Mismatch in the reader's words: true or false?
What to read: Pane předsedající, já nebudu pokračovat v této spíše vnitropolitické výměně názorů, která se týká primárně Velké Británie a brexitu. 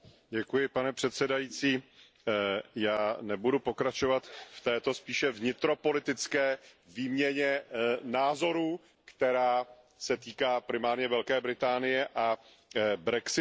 false